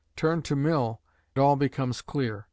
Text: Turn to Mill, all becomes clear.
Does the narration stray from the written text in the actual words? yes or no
no